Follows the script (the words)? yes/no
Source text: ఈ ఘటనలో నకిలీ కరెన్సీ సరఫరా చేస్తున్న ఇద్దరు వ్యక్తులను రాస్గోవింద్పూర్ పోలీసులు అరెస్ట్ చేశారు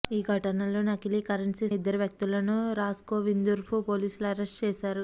no